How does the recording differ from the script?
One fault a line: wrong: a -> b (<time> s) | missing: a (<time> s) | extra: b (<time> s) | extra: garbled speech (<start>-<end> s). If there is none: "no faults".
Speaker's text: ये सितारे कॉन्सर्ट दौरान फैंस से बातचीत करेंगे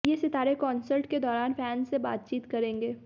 extra: के (1.1 s)